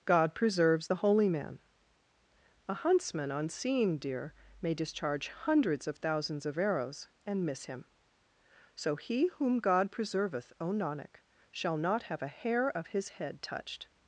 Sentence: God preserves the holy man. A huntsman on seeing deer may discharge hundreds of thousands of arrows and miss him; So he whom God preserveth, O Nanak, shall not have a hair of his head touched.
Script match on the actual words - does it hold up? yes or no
yes